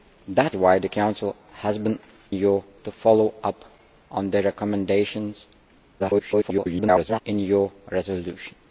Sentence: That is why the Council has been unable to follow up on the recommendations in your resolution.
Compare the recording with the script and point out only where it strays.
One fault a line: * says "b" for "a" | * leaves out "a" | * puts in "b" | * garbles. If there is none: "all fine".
* leaves out "is"
* says "your" for "unable"
* garbles